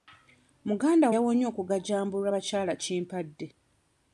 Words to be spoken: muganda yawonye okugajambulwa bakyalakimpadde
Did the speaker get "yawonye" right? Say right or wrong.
right